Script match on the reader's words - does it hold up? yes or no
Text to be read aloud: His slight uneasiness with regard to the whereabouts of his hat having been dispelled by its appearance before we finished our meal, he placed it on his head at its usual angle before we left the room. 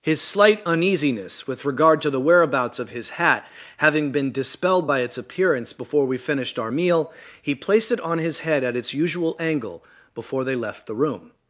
no